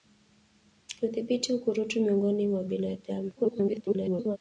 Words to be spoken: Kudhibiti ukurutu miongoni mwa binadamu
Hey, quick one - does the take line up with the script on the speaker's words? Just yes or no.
no